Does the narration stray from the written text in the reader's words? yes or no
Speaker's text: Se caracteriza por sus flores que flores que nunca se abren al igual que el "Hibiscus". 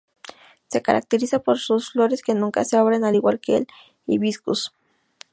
yes